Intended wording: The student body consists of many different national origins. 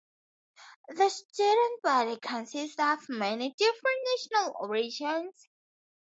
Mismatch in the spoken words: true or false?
false